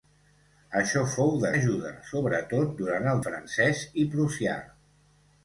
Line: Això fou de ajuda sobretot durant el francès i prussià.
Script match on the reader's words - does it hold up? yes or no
yes